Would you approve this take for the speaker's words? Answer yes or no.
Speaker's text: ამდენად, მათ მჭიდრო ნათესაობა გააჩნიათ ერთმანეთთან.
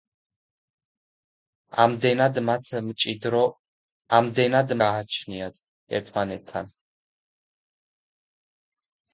no